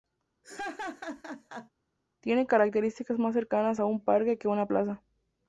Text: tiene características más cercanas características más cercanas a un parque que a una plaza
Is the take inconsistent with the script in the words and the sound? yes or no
yes